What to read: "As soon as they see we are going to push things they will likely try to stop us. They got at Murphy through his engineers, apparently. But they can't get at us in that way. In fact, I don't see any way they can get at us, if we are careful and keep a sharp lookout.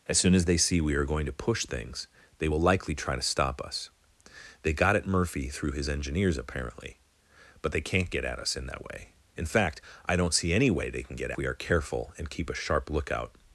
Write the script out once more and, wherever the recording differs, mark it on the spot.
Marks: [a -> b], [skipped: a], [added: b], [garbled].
"As soon as they see we are going to push things they will likely try to stop us. They got at Murphy through his engineers, apparently. But they can't get at us in that way. In fact, I don't see any way they can get [skipped: at us, if] we are careful and keep a sharp lookout.